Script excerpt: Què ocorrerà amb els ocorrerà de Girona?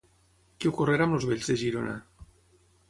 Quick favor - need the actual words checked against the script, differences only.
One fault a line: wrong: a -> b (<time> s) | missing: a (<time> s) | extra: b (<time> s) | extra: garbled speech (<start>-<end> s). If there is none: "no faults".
wrong: ocorrerà -> vells (1.3 s)